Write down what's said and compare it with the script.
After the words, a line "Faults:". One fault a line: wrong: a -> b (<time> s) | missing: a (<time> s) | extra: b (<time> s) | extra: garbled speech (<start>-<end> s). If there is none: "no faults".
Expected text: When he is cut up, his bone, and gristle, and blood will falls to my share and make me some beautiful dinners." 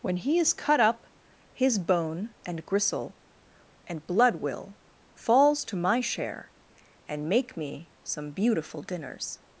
When he is cut up, his bone, and gristle, and blood will falls to my share and make me some beautiful dinners."
Faults:
no faults